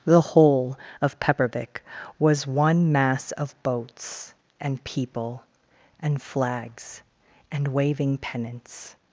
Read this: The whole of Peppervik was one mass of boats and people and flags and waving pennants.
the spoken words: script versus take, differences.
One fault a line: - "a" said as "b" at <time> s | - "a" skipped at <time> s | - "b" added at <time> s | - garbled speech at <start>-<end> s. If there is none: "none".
none